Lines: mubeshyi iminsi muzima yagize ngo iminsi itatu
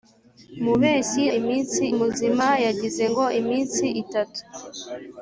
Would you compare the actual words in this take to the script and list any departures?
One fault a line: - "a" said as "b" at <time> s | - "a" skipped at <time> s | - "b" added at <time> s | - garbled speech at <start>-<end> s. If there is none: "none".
none